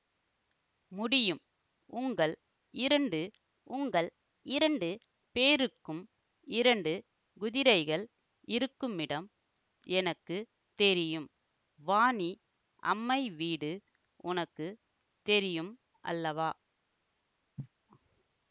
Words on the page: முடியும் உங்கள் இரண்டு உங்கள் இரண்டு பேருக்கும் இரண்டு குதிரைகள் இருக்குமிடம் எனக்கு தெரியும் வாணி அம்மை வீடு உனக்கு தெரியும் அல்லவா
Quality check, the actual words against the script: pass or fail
pass